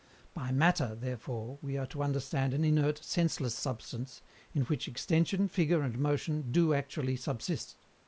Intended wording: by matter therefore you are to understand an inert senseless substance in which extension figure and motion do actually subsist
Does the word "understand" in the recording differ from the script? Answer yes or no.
no